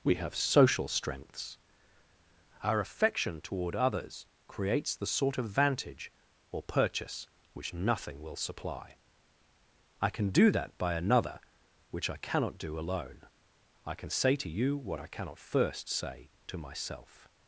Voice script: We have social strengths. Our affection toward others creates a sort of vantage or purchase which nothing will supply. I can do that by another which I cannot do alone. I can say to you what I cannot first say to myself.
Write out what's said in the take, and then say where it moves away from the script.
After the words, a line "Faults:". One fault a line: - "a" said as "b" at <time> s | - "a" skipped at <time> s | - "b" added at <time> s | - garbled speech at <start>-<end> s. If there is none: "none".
We have social strengths. Our affection toward others creates the sort of vantage or purchase which nothing will supply. I can do that by another which I cannot do alone. I can say to you what I cannot first say to myself.
Faults:
- "a" said as "the" at 4.9 s